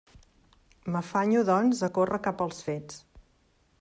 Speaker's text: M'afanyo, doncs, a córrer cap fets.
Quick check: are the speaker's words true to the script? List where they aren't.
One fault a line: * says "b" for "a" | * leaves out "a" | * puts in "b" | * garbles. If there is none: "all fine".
* puts in "als"